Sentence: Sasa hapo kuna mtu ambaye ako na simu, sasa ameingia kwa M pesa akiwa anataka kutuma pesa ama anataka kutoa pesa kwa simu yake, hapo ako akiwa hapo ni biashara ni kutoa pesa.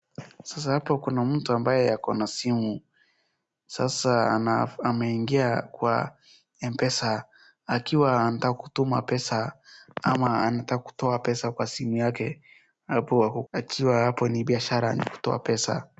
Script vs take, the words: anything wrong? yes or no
no